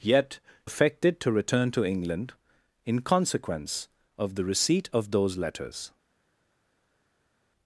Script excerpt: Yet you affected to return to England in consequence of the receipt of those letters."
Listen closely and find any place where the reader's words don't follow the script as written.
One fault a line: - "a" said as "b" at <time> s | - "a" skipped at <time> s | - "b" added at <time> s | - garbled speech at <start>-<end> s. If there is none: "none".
- "you" skipped at 0.4 s